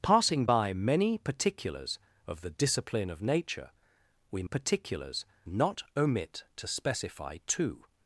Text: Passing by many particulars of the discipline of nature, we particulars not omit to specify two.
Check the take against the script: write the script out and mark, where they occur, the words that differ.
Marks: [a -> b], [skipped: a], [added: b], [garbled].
Passing by many particulars of the discipline of nature, we particulars not omit to specify two.